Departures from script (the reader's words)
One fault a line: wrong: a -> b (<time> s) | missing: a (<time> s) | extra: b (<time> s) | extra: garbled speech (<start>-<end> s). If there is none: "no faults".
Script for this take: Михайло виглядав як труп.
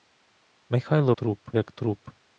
wrong: виглядав -> труп (1.1 s)